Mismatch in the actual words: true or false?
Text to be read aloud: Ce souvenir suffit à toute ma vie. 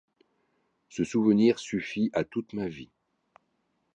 false